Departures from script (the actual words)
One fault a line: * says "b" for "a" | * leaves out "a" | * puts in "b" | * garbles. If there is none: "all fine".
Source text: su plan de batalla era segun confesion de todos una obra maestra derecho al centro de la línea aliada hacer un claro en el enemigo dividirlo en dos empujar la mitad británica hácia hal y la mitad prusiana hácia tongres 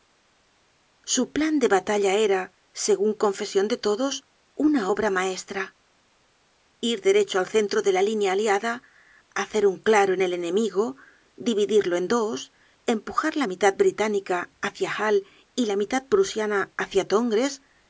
* puts in "ir"